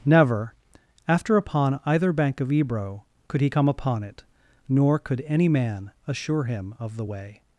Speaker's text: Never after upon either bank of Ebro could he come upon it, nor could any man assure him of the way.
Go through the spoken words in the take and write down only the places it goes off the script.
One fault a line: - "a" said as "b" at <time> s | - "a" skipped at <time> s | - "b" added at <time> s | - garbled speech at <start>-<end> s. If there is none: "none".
none